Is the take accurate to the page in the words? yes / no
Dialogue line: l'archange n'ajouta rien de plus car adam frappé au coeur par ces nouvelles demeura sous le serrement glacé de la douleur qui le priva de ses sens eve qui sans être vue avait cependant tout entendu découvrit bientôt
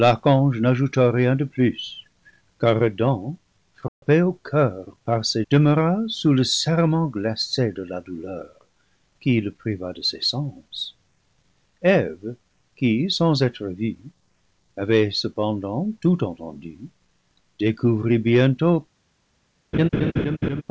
no